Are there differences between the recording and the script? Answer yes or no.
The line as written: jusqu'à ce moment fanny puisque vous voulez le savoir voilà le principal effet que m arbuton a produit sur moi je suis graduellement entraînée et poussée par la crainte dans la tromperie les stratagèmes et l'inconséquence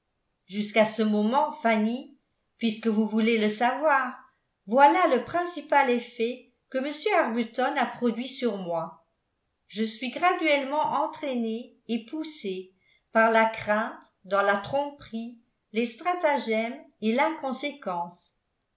no